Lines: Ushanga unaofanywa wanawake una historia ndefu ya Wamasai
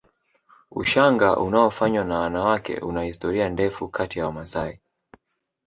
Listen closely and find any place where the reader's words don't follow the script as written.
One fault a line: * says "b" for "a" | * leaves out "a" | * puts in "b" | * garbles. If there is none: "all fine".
* puts in "na"
* puts in "kati"